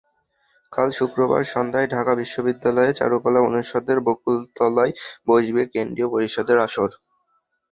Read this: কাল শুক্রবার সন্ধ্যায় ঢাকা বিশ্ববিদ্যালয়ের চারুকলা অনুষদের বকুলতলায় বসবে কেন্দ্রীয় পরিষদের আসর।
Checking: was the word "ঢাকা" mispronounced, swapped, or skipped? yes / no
no